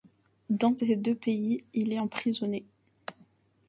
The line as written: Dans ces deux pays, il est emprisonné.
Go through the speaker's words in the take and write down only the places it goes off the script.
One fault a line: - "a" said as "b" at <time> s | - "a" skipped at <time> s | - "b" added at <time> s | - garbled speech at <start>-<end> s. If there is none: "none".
none